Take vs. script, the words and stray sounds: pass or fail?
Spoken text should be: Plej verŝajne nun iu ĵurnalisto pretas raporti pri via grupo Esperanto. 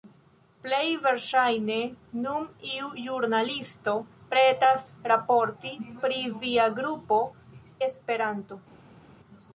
pass